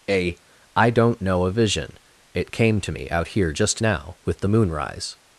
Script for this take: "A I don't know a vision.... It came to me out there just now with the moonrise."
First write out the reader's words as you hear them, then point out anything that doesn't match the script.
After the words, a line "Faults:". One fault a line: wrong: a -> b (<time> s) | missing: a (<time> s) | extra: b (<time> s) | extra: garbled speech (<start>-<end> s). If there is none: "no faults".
"A I don't know a vision.... It came to me out here just now with the moonrise."
Faults:
wrong: there -> here (3.3 s)